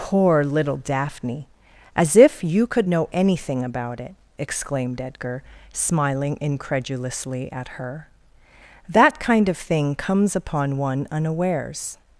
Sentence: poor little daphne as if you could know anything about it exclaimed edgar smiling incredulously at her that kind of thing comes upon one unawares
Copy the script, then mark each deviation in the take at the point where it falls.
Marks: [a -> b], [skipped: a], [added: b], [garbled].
poor little daphne as if you could know anything about it exclaimed edgar smiling incredulously at her that kind of thing comes upon one unawares